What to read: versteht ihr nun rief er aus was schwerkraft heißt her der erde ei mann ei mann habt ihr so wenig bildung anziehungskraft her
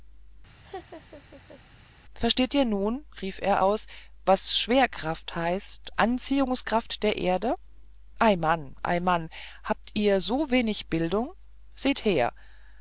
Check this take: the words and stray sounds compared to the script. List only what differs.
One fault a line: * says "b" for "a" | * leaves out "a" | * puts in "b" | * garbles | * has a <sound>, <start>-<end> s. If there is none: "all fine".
* has a laugh, 0.6-1.6 s
* says "anziehungskraft" for "her"
* says "seht" for "anziehungskraft"